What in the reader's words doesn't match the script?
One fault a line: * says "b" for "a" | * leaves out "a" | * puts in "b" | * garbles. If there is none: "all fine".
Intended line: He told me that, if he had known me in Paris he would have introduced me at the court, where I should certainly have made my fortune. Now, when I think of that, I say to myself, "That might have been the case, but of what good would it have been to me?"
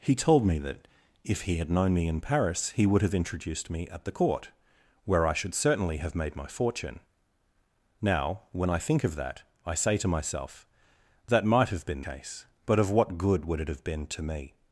* leaves out "the"